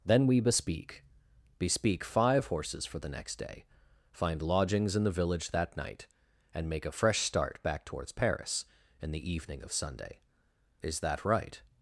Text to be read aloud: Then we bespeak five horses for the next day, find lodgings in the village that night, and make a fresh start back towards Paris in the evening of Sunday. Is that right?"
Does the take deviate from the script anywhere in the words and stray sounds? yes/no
yes